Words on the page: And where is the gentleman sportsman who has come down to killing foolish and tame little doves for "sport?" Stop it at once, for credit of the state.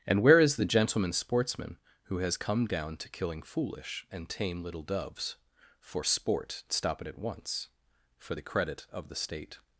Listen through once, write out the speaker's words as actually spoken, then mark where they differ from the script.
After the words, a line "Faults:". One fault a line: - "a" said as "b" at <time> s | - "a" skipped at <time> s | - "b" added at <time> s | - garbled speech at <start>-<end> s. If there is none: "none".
And where is the gentleman sportsman who has come down to killing foolish and tame little doves for "sport?" Stop it at once, for the credit of the state.
Faults:
- "the" added at 8.3 s